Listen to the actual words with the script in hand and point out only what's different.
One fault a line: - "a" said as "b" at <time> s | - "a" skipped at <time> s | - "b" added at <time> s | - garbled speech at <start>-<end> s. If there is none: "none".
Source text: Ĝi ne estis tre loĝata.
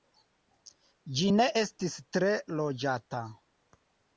none